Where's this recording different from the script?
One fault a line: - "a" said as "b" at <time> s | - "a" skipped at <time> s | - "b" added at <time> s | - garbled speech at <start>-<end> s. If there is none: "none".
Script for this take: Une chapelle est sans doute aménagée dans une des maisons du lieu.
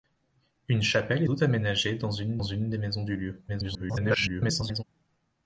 - "sans" skipped at 1.3 s
- "une" added at 2.4 s
- garbled speech at 3.5-4.8 s